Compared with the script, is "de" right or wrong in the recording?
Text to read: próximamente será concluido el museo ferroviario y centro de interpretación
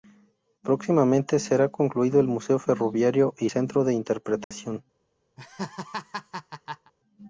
right